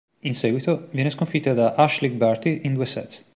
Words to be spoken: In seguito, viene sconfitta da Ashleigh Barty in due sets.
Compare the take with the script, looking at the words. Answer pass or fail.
pass